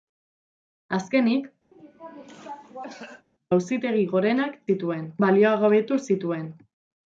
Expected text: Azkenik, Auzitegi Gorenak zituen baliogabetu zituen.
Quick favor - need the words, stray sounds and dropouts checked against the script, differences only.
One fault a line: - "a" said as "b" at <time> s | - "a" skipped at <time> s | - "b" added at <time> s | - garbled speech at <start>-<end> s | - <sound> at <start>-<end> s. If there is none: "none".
- cough at 1.7-3.3 s